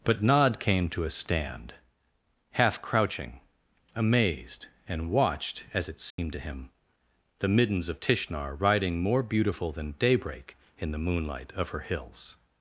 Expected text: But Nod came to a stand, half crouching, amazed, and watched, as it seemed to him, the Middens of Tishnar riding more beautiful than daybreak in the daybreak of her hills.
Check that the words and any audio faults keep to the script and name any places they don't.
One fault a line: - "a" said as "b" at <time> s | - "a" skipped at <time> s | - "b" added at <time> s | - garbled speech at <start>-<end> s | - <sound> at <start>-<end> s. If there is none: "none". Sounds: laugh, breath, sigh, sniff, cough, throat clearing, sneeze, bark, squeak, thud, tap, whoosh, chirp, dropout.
- dropout at 6.1-6.2 s
- "daybreak" said as "moonlight" at 11.0 s